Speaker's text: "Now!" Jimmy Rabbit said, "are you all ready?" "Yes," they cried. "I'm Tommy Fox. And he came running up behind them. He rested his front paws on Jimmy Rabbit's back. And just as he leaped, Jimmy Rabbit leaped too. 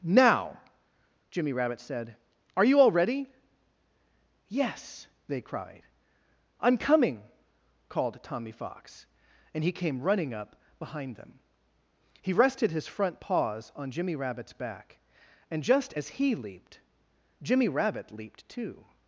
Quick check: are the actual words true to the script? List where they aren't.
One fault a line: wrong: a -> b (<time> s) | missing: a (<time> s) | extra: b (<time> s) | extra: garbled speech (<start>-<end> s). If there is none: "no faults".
extra: coming called (6.8 s)